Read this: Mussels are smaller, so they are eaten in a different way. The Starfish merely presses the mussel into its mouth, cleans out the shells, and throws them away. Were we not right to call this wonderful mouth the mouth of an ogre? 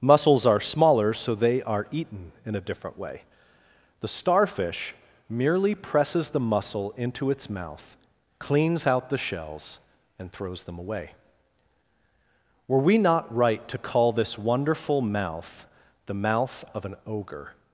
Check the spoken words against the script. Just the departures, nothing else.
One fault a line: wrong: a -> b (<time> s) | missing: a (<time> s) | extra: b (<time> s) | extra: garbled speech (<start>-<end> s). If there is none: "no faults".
no faults